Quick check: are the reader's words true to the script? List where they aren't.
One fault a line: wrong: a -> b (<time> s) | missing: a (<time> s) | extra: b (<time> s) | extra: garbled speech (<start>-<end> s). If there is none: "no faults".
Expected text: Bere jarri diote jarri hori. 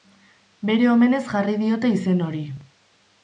extra: omenez (0.9 s)
wrong: jarri -> izen (2.0 s)